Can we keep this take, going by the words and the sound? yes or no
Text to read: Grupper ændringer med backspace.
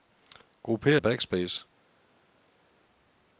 no